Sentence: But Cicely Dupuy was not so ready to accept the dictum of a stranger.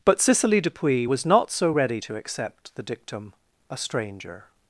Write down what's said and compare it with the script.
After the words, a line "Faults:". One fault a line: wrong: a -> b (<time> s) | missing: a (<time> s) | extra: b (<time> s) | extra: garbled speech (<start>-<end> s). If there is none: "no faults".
But Cicely Dupuy was not so ready to accept the dictum a stranger.
Faults:
missing: of (3.3 s)